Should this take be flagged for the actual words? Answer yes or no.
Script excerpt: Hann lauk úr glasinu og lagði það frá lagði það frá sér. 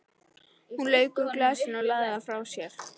yes